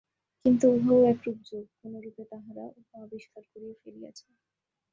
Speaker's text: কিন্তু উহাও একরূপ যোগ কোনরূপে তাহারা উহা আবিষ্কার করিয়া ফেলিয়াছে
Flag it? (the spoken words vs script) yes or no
no